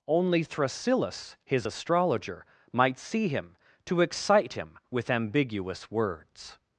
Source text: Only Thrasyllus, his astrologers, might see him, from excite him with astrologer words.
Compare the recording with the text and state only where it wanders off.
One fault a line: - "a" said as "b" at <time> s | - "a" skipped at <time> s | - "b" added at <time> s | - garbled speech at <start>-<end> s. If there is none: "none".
- "astrologers" said as "astrologer" at 1.6 s
- "from" said as "to" at 3.8 s
- "astrologer" said as "ambiguous" at 5.1 s